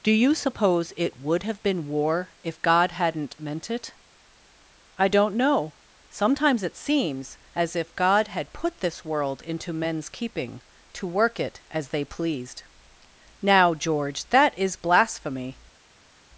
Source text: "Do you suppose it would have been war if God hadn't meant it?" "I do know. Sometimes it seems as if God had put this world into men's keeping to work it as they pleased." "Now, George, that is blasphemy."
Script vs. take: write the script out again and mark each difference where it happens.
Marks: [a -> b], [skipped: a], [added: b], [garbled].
"Do you suppose it would have been war if God hadn't meant it?" "I [do -> don't] know. Sometimes it seems as if God had put this world into men's keeping to work it as they pleased." "Now, George, that is blasphemy."